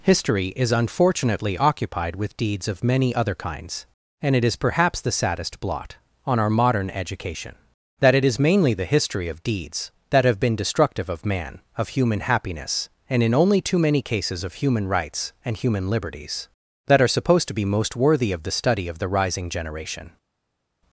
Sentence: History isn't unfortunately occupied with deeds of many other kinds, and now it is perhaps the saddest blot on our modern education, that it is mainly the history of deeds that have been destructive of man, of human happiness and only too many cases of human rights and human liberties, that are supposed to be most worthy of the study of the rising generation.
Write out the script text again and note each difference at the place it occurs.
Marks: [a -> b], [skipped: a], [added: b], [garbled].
History [isn't -> is] unfortunately occupied with deeds of many other kinds, and [skipped: now] it is perhaps the saddest blot on our modern education, that it is mainly the history of deeds that have been destructive of man, of human happiness and [added: in] only too many cases of human rights and human liberties, that are supposed to be most worthy of the study of the rising generation.